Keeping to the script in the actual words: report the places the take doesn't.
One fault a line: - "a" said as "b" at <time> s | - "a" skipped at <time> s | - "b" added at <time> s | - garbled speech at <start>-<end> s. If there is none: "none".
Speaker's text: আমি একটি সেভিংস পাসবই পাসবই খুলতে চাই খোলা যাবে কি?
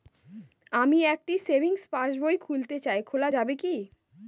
- "পাসবই" skipped at 2.4 s